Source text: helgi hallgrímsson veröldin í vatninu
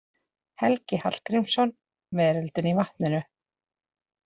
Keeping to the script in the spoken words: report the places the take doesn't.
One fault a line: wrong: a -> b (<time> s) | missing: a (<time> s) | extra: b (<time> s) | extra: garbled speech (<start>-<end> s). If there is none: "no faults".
no faults